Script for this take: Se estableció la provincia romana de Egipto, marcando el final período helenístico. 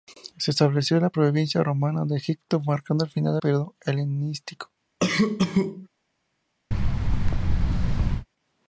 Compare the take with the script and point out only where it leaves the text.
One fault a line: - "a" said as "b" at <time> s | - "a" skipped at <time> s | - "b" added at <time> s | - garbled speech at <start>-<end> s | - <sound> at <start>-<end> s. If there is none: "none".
- cough at 5.0-5.9 s
- thud at 6.7-8.3 s